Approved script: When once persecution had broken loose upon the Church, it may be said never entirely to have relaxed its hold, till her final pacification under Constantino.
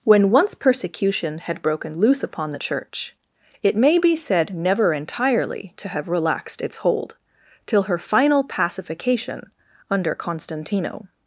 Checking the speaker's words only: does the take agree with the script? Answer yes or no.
yes